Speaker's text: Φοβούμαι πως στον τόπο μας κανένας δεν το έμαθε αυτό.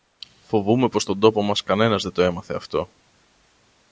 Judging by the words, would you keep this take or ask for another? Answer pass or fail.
pass